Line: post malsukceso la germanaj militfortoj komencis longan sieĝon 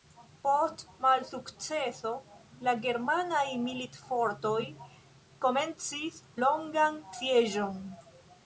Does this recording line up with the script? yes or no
yes